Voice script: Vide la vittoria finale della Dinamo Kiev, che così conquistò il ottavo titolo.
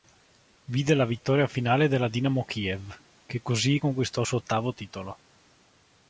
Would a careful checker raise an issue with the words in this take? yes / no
yes